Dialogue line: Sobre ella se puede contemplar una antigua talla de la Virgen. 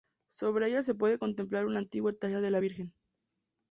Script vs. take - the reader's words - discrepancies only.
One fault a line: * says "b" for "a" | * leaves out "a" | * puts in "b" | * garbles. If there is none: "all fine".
all fine